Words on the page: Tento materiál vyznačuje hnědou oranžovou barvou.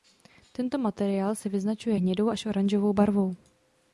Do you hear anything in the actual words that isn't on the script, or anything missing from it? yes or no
yes